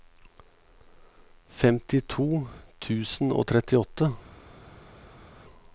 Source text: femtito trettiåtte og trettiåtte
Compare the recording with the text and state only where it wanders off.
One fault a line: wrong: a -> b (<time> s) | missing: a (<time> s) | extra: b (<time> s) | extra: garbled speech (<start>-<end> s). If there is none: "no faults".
wrong: trettiåtte -> tusen (2.9 s)